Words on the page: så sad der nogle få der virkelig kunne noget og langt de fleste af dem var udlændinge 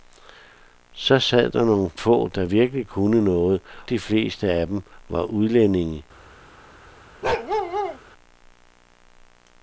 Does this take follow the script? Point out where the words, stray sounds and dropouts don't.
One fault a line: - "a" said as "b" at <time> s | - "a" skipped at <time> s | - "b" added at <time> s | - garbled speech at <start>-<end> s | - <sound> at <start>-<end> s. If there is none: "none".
- "og langt" skipped at 3.6 s
- bark at 7.2-8.0 s